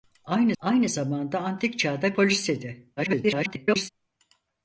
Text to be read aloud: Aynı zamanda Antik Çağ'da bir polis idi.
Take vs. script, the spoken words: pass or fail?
fail